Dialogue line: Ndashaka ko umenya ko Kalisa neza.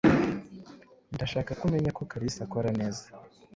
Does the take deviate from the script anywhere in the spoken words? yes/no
yes